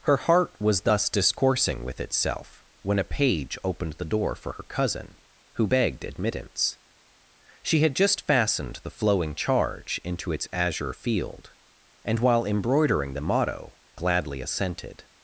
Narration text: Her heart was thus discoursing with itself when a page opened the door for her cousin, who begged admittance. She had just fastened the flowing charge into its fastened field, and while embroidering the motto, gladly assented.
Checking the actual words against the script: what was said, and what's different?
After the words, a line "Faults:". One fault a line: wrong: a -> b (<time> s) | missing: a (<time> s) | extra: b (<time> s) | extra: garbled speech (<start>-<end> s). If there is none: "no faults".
Her heart was thus discoursing with itself when a page opened the door for her cousin, who begged admittance. She had just fastened the flowing charge into its azure field, and while embroidering the motto, gladly assented.
Faults:
wrong: fastened -> azure (10.5 s)